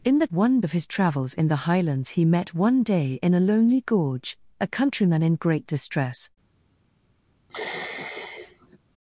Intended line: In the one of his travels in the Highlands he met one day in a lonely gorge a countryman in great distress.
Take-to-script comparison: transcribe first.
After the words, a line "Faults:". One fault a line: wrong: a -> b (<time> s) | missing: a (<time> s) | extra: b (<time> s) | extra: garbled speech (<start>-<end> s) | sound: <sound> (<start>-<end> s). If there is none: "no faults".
In the one of his travels in the Highlands he met one day in a lonely gorge a countryman in great distress.
Faults:
sound: sigh (7.5-8.8 s)